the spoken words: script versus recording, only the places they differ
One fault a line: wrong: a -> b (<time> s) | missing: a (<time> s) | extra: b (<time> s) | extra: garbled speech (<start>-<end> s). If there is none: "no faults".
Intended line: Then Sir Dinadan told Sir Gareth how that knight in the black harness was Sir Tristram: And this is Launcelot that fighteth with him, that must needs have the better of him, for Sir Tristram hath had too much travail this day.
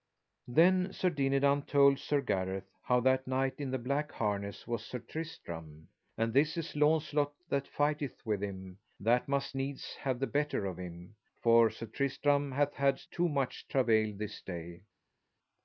no faults